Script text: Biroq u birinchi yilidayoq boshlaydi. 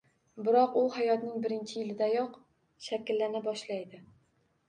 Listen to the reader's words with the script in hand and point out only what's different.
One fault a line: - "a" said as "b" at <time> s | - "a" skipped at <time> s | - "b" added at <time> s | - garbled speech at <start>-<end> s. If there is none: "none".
- "hayotning" added at 0.9 s
- "shakllana" added at 2.9 s